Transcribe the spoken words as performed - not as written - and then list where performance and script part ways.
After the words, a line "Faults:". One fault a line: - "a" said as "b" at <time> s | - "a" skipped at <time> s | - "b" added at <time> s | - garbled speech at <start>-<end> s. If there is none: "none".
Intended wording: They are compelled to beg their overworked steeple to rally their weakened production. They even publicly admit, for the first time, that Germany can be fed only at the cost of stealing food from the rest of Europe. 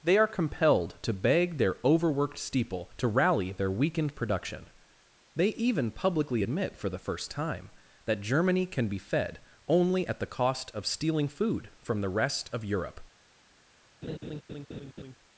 They are compelled to beg their overworked steeple to rally their weakened production. They even publicly admit, for the first time, that Germany can be fed only at the cost of stealing food from the rest of Europe.
Faults:
none